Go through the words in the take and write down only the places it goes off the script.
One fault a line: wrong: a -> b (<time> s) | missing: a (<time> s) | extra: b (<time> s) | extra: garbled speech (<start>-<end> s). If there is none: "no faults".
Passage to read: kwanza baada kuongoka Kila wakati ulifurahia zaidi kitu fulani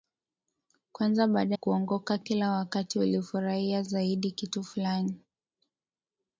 no faults